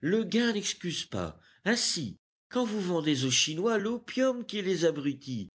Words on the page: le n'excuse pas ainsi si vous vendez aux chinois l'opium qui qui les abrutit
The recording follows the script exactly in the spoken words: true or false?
false